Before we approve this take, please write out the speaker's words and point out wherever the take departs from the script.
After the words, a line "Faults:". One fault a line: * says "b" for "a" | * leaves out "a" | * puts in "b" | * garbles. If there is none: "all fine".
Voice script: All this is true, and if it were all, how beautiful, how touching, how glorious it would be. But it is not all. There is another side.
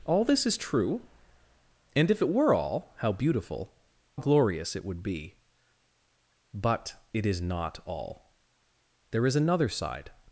All this is true, and if it were all, how beautiful, glorious it would be. But it is not all. There is another side.
Faults:
* leaves out "how touching how"